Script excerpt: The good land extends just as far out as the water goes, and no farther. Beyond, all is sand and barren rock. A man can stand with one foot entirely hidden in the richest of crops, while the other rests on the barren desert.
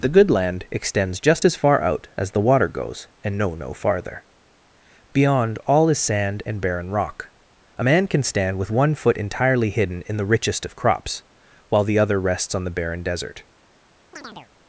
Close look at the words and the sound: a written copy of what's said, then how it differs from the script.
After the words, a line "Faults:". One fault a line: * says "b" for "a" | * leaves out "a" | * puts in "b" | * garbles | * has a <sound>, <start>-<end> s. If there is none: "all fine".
The good land extends just as far out as the water goes, and no no farther. Beyond, all is sand and barren rock. A man can stand with one foot entirely hidden in the richest of crops, while the other rests on the barren desert.
Faults:
* puts in "no"
* has a chirp, 14.1-14.5 s